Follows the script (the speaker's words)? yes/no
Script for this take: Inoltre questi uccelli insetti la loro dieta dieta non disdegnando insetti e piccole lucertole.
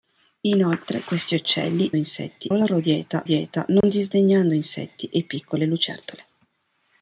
yes